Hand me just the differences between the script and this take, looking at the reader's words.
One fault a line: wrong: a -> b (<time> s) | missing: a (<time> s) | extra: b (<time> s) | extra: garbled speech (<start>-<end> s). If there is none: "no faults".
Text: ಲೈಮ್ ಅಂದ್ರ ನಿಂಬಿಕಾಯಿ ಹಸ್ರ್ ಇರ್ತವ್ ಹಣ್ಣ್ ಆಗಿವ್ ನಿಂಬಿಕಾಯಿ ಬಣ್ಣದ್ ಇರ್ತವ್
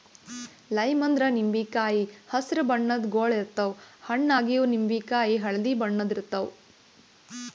extra: ಬಣ್ಣದ್ ಗೊಳ್ (2.6 s)
extra: ಹಳ್ದಿ (5.4 s)